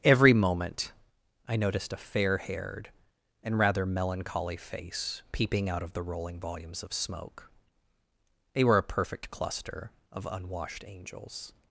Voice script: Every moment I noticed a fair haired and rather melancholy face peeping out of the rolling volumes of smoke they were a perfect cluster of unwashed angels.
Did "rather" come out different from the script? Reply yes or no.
no